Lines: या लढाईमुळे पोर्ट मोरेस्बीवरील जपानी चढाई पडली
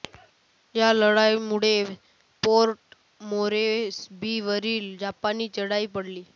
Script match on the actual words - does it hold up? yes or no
yes